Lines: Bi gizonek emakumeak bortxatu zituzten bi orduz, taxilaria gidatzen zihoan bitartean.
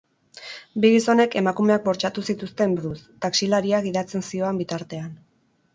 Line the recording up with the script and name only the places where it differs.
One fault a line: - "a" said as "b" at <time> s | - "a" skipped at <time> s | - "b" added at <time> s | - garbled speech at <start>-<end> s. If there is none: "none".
- "bi" skipped at 2.8 s